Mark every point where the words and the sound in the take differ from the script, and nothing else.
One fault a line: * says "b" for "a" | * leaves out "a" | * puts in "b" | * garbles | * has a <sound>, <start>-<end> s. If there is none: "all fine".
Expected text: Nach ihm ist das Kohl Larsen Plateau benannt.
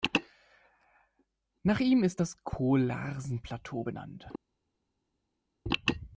all fine